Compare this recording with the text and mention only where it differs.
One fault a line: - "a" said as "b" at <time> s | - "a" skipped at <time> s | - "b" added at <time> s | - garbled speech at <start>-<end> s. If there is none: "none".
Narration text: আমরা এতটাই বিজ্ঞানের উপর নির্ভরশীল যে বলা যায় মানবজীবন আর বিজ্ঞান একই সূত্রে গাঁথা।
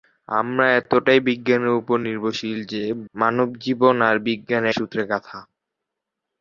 - "বলা যায়" skipped at 2.8 s
- "একই" skipped at 4.6 s